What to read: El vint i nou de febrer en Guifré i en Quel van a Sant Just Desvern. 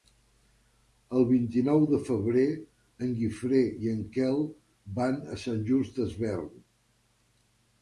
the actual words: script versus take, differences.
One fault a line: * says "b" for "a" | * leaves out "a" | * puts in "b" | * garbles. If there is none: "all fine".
all fine